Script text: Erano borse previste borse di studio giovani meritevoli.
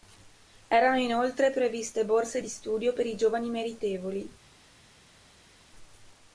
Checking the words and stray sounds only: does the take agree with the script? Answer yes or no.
no